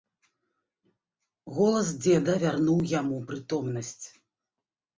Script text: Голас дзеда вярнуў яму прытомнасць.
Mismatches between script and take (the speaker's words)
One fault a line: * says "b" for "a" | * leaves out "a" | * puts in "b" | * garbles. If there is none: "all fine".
all fine